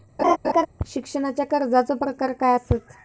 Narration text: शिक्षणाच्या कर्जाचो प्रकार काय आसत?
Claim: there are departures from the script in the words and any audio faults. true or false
true